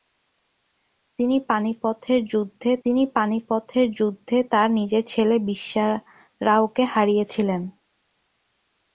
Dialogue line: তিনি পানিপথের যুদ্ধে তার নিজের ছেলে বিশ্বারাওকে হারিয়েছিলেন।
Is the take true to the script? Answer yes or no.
no